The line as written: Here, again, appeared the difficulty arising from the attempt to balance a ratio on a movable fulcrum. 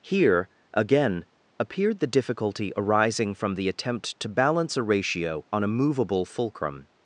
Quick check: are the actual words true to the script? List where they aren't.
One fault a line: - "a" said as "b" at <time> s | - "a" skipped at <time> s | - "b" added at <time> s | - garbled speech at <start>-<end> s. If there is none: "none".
none